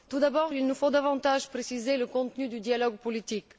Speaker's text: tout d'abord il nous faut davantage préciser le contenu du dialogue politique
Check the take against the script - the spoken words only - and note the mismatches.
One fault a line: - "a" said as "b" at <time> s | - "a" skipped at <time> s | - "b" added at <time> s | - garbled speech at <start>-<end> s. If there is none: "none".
none